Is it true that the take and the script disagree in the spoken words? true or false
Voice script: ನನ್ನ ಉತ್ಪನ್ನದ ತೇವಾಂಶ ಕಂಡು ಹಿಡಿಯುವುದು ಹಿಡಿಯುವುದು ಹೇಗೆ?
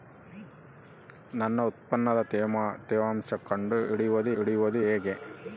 false